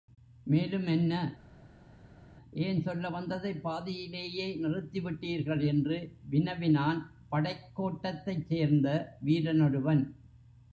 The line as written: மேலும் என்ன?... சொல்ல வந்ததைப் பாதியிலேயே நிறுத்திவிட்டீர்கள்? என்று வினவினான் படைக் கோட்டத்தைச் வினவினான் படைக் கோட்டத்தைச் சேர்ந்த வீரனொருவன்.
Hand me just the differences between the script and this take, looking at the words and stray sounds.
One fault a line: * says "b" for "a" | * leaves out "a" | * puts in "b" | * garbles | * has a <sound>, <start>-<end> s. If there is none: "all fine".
* puts in "ஏன்"
* leaves out "வினவினான் படைக் கோட்டத்தைச்"